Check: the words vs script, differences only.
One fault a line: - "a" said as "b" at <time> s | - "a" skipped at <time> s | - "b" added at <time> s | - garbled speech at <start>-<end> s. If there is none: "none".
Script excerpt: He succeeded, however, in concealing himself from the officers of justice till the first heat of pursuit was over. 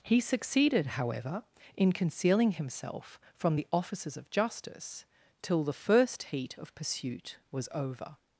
none